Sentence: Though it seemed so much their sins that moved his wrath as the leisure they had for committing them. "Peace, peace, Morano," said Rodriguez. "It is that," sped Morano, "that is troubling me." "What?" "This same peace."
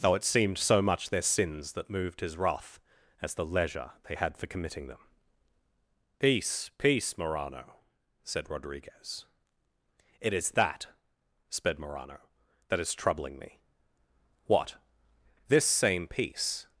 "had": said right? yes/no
yes